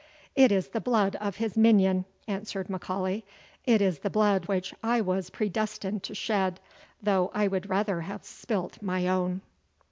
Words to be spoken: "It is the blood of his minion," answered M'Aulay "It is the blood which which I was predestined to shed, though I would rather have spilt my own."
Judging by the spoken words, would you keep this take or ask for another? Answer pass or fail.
fail